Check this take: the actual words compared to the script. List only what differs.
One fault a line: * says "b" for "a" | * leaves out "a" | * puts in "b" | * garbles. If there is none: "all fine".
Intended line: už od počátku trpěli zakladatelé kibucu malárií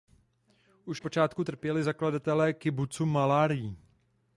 * leaves out "od"